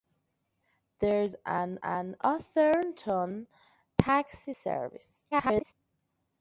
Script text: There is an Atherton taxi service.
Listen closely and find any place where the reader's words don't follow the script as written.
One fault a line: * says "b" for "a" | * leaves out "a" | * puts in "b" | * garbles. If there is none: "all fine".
* puts in "an"
* garbles